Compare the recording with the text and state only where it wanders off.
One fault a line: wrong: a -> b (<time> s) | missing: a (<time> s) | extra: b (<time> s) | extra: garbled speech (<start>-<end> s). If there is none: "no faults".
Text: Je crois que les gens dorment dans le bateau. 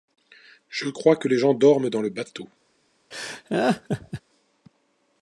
no faults